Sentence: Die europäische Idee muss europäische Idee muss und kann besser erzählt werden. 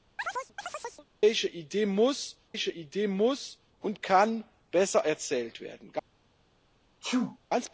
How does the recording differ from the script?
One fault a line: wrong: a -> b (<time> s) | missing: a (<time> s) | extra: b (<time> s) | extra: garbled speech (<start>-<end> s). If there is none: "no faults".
no faults